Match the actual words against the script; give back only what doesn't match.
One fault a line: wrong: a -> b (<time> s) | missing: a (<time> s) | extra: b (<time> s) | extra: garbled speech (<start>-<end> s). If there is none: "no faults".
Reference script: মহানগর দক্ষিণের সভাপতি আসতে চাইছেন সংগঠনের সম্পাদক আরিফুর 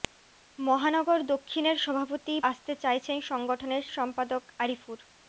no faults